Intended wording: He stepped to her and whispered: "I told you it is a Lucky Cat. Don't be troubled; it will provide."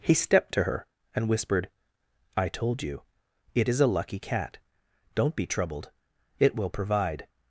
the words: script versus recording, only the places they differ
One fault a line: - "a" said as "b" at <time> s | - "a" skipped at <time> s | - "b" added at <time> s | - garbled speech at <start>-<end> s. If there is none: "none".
none